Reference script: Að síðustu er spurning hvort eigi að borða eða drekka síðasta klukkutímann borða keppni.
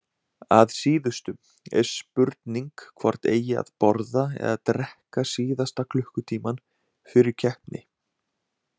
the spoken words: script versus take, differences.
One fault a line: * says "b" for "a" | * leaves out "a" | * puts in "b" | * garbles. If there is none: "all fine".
* says "fyrir" for "borða"